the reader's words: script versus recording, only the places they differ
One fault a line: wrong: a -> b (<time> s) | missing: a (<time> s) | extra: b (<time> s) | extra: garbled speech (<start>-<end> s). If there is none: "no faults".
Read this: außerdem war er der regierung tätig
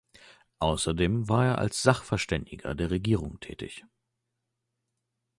extra: als sachverständiger (1.6 s)